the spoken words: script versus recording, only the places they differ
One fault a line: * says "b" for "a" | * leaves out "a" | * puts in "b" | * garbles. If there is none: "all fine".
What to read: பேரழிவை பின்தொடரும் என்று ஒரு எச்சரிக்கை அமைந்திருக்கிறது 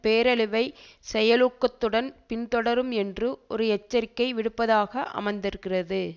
* puts in "செயலூக்கத்துடன்"
* puts in "விடுப்பதாக"